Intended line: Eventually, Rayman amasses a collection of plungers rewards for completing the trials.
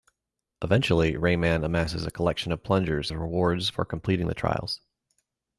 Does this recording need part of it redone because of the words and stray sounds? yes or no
no